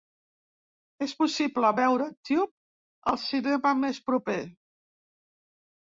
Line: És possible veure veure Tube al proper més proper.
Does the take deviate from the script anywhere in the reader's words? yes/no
yes